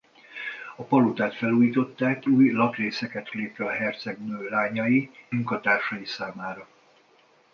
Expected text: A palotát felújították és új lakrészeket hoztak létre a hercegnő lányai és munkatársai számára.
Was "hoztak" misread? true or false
true